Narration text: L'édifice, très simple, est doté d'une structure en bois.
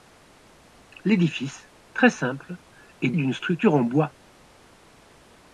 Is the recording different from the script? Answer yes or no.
yes